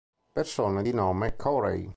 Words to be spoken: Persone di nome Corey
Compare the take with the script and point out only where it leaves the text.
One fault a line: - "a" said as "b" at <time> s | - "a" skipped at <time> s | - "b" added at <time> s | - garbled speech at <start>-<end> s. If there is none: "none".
none